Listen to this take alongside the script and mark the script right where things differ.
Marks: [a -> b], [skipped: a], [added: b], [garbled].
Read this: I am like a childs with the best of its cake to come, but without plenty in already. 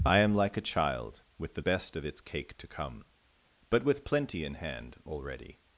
I am like a [childs -> child] with the best of its cake to come, but [without -> with] plenty in [added: hand] already.